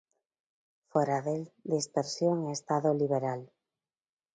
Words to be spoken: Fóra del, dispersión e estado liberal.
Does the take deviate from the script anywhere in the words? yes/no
no